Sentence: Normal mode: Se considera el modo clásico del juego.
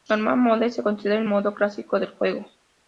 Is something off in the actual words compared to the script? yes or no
no